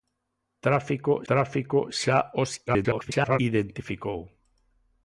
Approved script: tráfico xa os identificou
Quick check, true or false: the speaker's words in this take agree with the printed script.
false